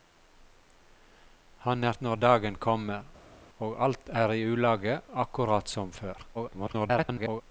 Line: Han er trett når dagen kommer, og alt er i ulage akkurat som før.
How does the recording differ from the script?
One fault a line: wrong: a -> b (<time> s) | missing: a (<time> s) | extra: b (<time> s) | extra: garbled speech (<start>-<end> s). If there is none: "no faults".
missing: trett (2.0 s)
extra: garbled speech (6.3-7.4 s)